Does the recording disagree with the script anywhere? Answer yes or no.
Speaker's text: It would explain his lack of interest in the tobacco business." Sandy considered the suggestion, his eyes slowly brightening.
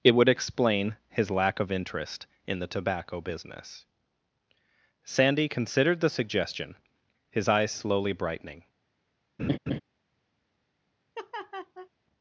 no